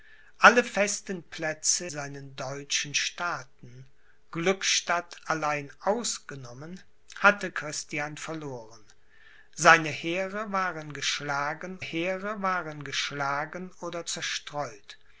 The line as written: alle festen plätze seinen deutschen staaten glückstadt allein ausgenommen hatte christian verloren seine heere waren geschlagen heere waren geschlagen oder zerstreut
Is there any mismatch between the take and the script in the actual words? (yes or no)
no